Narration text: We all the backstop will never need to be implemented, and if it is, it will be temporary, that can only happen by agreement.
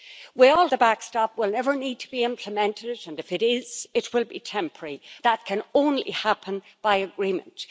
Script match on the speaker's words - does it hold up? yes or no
yes